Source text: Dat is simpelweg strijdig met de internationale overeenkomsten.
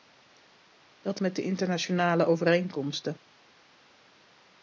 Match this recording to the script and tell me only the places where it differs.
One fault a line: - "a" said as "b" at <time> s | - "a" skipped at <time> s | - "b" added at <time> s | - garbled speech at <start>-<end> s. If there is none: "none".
- "is simpelweg strijdig" skipped at 1.2 s